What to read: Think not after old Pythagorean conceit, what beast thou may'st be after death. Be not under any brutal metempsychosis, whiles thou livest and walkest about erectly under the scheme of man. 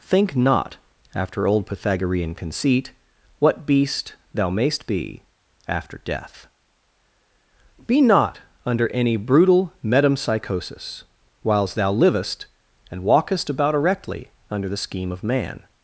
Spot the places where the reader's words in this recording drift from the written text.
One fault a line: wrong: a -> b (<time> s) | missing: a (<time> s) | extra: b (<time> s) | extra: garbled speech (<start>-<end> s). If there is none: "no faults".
no faults